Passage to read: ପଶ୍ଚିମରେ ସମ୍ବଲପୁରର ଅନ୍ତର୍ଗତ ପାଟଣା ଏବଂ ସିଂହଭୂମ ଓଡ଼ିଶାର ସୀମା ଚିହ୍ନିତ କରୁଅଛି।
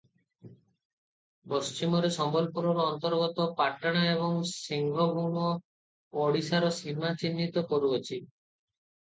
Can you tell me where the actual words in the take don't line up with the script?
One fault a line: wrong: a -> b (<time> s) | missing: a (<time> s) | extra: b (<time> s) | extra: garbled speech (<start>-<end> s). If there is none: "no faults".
no faults